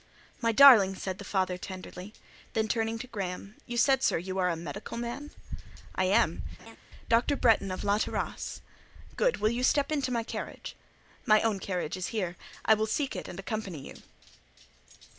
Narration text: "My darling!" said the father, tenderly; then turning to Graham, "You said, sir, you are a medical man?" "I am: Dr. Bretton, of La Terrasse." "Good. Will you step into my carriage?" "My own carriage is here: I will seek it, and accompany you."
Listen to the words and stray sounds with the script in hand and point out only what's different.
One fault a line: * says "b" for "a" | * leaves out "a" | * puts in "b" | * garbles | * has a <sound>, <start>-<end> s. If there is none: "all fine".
* has a laugh, 6.6-6.8 s